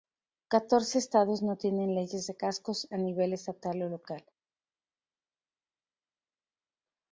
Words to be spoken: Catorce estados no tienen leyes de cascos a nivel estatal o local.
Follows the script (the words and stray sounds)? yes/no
yes